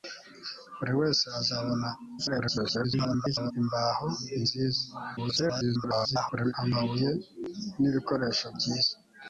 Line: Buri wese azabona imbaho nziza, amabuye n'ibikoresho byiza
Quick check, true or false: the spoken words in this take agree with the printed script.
false